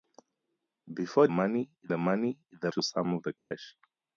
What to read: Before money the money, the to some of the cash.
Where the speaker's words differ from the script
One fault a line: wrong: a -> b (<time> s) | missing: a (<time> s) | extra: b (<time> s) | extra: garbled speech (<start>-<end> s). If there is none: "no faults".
no faults